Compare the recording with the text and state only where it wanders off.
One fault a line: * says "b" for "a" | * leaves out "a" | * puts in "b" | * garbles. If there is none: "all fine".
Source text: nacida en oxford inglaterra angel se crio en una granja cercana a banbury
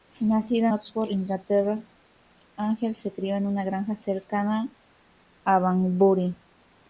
* leaves out "en"